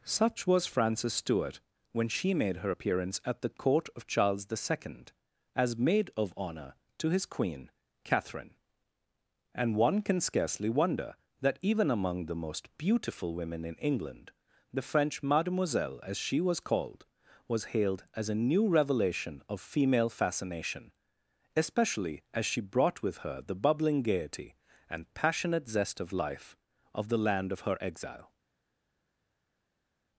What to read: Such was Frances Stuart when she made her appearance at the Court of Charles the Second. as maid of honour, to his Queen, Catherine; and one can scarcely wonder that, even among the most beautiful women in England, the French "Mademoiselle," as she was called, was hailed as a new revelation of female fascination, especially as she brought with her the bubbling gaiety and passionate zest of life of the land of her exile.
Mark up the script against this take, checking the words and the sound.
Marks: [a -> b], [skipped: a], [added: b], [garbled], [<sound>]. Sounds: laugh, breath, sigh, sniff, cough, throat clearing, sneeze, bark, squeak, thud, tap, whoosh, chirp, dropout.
Such was Frances Stuart when she made her appearance at the Court of Charles the Second. as maid of honour, to his Queen, Catherine; and one can scarcely wonder that, even among the most beautiful women in England, the French "Mademoiselle," as she was called, was hailed as a new revelation of female fascination, especially as she brought with her the bubbling gaiety and passionate zest of life of the land of her exile.